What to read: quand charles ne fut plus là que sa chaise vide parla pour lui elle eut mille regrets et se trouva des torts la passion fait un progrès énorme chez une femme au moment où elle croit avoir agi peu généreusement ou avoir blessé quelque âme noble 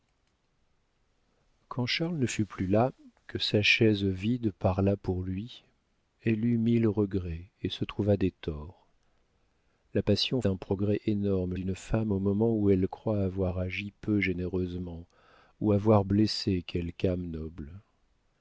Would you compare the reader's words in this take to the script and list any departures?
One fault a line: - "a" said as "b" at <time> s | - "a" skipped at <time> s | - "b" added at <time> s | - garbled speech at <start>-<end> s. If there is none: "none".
- "fait" skipped at 10.4 s
- "chez" skipped at 11.6 s